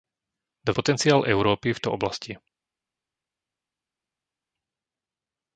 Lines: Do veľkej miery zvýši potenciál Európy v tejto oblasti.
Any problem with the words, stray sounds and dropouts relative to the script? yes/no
yes